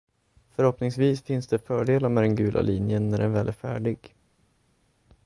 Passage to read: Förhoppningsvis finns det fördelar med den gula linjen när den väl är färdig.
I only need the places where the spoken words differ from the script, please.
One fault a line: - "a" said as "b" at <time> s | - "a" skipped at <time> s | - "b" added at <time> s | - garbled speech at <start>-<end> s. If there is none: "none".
none